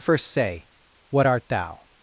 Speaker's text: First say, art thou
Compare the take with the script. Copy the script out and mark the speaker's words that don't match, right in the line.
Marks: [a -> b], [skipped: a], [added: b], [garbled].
First say, [added: what] art thou